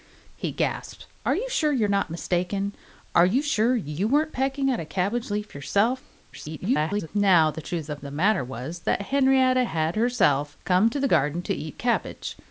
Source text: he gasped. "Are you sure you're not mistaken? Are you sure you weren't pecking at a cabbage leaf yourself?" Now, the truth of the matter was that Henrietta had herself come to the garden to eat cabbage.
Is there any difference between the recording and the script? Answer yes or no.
yes